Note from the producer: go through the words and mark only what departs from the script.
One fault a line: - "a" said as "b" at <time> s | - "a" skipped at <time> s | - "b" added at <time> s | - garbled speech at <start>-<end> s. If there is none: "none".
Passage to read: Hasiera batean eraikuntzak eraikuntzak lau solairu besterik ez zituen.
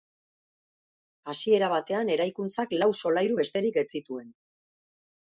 - "eraikuntzak" skipped at 2.7 s